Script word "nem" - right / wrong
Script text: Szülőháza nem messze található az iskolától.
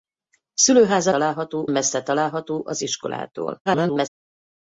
wrong